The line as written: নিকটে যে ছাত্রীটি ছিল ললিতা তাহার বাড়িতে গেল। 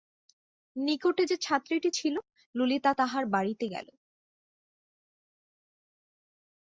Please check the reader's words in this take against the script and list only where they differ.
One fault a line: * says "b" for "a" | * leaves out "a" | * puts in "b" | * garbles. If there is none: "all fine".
all fine